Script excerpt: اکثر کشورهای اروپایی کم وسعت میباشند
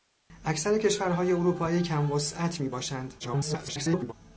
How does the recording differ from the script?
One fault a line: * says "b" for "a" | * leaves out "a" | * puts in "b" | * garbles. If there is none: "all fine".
* garbles